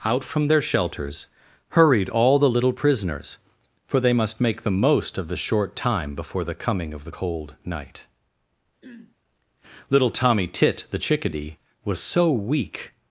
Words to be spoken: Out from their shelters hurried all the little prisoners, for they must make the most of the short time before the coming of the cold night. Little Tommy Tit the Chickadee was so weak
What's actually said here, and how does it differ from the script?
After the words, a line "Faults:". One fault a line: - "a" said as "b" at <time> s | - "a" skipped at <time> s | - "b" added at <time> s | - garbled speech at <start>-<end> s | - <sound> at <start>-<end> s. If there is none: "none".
Out from their shelters hurried all the little prisoners, for they must make the most of the short time before the coming of the cold night. Little Tommy Tit the Chickadee was so weak
Faults:
- throat clearing at 8.8-9.2 s